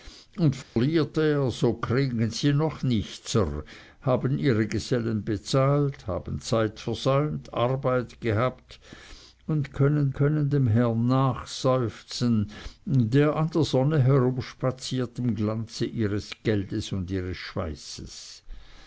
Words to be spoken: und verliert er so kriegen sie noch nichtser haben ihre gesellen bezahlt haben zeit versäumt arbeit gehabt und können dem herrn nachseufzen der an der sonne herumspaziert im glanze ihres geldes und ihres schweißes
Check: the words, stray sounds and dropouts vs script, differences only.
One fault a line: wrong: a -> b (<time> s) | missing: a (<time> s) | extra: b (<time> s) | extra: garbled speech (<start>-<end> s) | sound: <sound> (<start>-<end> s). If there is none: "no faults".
sound: dropout (0.6-0.8 s)
extra: können (10.1 s)